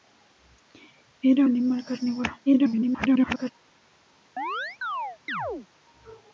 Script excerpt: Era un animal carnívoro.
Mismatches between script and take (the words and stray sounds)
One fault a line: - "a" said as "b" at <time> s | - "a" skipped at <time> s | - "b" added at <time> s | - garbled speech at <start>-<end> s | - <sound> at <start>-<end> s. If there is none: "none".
- "un" skipped at 1.5 s
- garbled speech at 2.5-3.5 s
- chirp at 4.4-5.7 s